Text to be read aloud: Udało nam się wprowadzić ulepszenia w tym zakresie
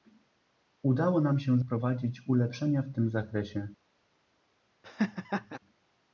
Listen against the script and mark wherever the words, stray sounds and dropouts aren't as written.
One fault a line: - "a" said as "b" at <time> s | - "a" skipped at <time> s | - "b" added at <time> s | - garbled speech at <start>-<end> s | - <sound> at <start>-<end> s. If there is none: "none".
- laugh at 4.8-5.6 s